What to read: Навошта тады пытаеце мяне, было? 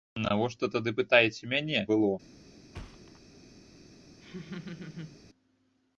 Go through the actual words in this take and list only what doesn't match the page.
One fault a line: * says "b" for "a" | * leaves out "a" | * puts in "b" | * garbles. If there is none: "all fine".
all fine